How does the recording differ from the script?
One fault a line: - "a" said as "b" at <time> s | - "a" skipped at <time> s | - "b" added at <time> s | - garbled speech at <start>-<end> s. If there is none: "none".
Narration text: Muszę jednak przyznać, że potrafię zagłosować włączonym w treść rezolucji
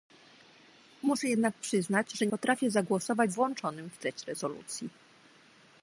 none